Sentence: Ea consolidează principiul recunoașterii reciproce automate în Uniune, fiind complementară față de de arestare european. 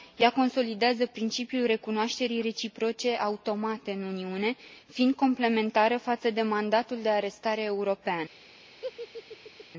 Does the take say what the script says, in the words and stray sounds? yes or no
no